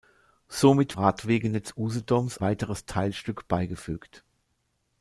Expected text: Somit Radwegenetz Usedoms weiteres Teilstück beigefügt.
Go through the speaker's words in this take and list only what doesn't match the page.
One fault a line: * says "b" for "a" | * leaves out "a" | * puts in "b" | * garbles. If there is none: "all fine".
all fine